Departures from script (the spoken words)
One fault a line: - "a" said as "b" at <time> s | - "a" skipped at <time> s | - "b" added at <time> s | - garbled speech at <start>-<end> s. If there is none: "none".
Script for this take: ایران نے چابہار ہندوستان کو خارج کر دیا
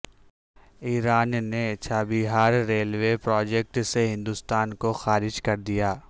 - "ریلوے پراجکٹ سے" added at 2.7 s